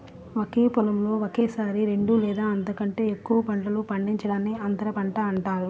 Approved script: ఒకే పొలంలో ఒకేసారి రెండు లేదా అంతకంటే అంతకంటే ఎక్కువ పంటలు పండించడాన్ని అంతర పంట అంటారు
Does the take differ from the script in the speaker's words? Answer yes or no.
yes